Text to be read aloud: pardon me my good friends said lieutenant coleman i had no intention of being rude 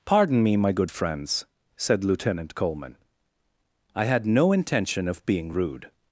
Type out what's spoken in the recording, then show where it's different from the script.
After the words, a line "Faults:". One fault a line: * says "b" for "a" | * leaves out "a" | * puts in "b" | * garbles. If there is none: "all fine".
pardon me my good friends said lieutenant coleman i had no intention of being rude
Faults:
all fine